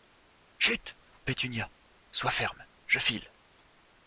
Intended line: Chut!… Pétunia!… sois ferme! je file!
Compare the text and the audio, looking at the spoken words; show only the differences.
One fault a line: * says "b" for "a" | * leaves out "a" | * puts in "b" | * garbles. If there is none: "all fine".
all fine